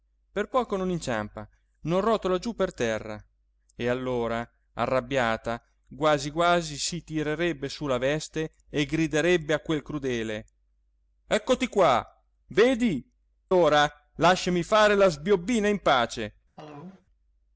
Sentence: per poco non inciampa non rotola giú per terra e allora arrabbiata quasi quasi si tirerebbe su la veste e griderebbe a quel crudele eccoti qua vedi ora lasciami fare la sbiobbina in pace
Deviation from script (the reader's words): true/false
false